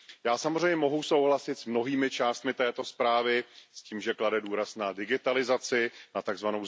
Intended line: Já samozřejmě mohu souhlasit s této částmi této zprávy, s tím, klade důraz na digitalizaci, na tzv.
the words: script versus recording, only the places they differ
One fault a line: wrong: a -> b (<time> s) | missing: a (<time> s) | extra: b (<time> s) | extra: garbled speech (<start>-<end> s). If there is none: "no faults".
wrong: této -> mnohými (1.6 s)
extra: že (4.0 s)